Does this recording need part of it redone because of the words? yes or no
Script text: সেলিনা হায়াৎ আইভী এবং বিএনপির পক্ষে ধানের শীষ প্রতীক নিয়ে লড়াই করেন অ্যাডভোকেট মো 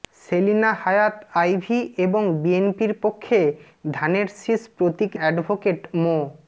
yes